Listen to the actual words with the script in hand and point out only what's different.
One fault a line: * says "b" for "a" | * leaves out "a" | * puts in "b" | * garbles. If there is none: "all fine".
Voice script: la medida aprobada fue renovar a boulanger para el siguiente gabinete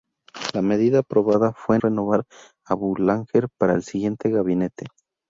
all fine